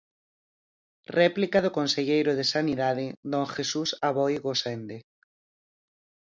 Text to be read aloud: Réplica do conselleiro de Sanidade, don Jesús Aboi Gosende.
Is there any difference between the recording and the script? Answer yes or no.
no